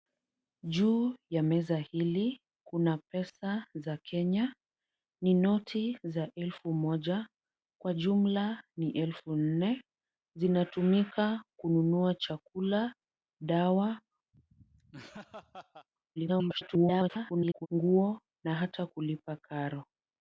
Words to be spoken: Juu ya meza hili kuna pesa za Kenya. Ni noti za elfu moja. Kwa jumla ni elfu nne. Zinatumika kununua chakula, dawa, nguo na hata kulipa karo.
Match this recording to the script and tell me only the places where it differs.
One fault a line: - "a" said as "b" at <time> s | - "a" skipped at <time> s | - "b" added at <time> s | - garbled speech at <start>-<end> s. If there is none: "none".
- garbled speech at 16.2-17.7 s